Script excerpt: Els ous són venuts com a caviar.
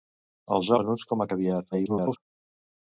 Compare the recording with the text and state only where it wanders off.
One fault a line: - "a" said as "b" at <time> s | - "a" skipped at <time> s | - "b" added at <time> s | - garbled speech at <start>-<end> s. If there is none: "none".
- "ous són" skipped at 0.7 s
- garbled speech at 1.7-2.2 s